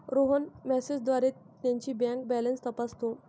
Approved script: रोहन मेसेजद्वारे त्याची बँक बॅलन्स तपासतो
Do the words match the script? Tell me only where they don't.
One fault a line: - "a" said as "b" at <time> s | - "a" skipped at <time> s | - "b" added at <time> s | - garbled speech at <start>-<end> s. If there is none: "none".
none